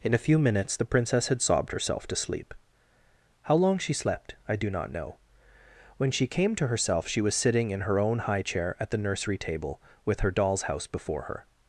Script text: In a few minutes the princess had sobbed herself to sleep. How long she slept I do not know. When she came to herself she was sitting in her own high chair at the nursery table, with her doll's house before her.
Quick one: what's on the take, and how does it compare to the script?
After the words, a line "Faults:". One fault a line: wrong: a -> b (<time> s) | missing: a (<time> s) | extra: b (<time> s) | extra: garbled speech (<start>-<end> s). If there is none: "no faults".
In a few minutes the princess had sobbed herself to sleep. How long she slept I do not know. When she came to herself she was sitting in her own high chair at the nursery table, with her doll's house before her.
Faults:
no faults